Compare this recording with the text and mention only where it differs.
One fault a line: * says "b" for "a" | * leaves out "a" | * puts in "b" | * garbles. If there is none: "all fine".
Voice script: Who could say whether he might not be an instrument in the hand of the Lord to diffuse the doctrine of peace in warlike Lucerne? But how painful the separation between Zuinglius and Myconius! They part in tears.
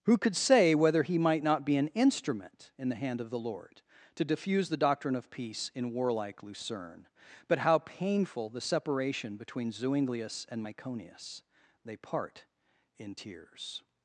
all fine